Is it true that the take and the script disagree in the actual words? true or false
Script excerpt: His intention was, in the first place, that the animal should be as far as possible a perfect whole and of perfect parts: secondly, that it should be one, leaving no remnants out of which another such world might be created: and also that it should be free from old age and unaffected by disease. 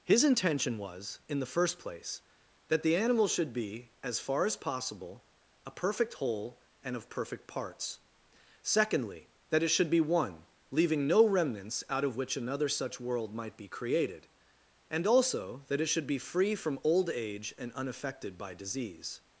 false